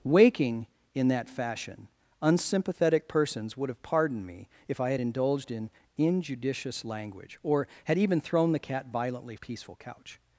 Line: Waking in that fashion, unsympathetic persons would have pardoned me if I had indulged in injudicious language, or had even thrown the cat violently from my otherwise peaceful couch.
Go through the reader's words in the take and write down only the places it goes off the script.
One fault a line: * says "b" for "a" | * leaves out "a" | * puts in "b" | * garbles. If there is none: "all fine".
* leaves out "from my otherwise"